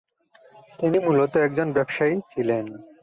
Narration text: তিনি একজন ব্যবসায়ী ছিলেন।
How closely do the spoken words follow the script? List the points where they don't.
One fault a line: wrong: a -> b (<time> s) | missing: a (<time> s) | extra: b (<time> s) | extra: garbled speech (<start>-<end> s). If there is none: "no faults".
extra: মূলত (1.0 s)